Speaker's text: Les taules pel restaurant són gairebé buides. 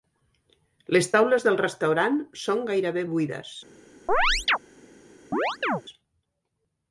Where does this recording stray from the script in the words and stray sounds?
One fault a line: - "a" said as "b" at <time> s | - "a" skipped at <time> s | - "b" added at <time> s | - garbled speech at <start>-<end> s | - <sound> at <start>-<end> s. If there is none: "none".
- "pel" said as "del" at 1.5 s
- chirp at 4.1-4.6 s
- chirp at 5.3-5.8 s